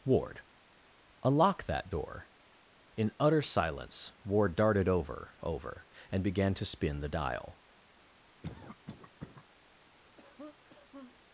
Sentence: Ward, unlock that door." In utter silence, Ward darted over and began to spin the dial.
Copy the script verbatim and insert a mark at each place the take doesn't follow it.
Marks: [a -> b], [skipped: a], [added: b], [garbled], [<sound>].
Ward, unlock that door." In utter silence, Ward darted over [added: over] and began to spin the dial. [cough] [cough]